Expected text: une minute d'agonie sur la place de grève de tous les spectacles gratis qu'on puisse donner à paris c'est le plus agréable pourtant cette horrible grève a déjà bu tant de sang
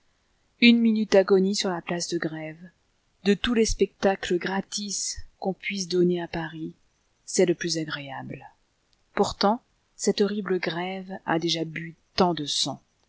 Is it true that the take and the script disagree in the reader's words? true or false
false